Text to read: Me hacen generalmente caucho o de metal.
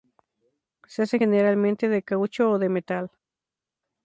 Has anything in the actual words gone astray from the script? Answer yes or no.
yes